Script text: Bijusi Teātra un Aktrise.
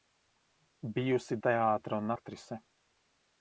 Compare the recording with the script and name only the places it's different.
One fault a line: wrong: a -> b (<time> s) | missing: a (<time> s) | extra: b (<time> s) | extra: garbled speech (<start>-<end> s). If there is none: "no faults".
no faults